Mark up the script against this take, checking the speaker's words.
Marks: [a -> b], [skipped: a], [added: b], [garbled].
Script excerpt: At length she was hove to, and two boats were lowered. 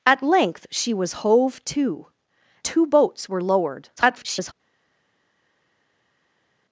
At length she was hove to, [skipped: and] two boats were lowered. [garbled]